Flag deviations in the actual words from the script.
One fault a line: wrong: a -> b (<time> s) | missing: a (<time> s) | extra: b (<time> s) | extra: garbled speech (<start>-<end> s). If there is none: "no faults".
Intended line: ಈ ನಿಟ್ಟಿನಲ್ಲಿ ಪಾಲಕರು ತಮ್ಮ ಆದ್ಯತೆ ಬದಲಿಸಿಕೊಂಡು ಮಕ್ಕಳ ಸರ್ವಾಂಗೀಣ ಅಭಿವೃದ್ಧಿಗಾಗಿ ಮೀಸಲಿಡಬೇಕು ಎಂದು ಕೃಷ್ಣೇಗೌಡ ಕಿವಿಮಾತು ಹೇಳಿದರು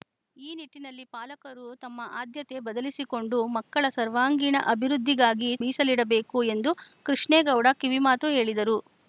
no faults